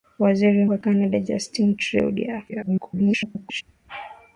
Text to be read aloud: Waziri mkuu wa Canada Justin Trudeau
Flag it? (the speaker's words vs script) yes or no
yes